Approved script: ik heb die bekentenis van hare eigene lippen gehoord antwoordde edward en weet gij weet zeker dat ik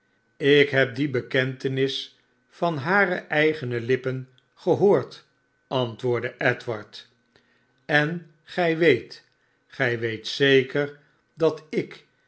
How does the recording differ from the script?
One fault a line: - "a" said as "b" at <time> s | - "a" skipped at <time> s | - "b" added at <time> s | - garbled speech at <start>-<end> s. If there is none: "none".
- "gij" added at 8.4 s